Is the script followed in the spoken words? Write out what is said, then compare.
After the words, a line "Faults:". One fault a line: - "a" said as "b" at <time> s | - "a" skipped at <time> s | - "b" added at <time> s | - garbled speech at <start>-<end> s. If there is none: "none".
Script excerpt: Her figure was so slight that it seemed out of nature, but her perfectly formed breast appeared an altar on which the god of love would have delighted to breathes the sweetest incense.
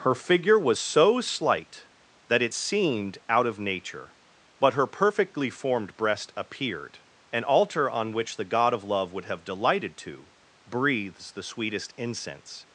Her figure was so slight that it seemed out of nature, but her perfectly formed breast appeared an altar on which the god of love would have delighted to breathes the sweetest incense.
Faults:
none